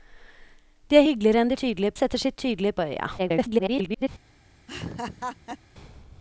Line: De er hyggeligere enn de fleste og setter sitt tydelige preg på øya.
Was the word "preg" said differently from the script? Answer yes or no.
yes